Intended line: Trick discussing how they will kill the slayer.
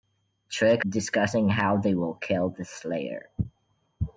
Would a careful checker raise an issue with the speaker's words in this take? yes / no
no